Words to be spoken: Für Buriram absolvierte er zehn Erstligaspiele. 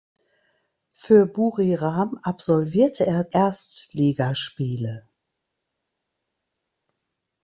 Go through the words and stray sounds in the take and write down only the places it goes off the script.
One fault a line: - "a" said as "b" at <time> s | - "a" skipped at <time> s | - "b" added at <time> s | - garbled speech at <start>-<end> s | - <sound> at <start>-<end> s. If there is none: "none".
- "zehn" skipped at 3.3 s